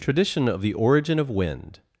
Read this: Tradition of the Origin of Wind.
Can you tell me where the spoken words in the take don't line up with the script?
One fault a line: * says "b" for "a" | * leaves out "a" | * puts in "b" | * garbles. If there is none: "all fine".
all fine